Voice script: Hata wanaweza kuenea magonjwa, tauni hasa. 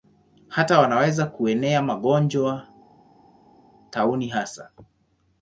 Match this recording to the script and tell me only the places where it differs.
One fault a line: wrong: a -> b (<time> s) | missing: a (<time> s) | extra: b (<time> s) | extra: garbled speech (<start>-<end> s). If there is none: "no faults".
no faults